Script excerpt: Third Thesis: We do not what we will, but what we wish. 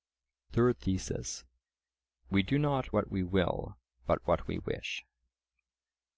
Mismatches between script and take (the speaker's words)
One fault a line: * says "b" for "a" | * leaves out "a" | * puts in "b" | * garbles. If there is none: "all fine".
all fine